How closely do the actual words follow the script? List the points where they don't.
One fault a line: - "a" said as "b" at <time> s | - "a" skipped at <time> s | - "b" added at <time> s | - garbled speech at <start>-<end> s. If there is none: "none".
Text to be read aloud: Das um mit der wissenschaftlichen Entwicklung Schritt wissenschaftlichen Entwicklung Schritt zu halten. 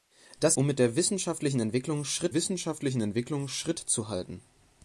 none